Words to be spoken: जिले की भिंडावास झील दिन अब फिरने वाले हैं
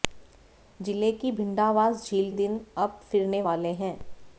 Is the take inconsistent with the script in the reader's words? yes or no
no